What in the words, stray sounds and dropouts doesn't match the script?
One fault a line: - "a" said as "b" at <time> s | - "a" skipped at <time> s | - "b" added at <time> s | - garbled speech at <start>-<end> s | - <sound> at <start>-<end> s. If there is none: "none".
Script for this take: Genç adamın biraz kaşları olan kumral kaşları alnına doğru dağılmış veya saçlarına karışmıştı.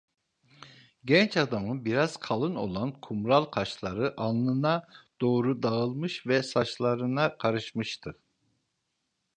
- "kaşları" said as "kalın" at 2.2 s
- "veya" said as "ve" at 6.3 s